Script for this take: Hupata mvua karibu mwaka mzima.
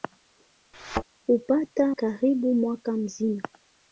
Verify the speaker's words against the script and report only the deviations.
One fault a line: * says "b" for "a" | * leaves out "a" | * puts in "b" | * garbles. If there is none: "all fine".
* leaves out "mvua"